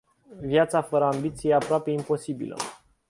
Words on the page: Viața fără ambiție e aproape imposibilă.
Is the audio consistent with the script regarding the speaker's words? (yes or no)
yes